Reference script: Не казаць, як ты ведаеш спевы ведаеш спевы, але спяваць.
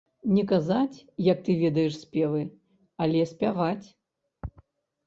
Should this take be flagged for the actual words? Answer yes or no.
yes